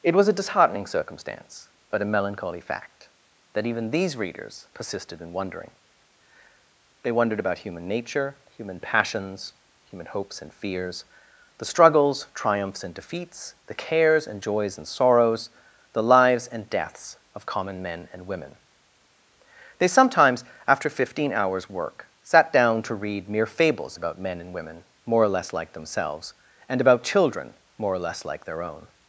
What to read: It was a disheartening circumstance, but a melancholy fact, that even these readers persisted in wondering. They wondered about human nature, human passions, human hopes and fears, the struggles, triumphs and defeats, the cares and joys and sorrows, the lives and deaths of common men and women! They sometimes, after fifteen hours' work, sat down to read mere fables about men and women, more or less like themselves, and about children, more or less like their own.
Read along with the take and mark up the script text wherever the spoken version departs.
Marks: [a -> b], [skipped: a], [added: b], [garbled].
It was a disheartening circumstance, but a melancholy fact, that even these readers persisted in wondering. They wondered about human nature, human passions, human hopes and fears, the struggles, triumphs and defeats, the cares and joys and sorrows, the lives and deaths of common men and women! They sometimes, after fifteen hours' work, sat down to read mere fables about men and women, more or less like themselves, and about children, more or less like their own.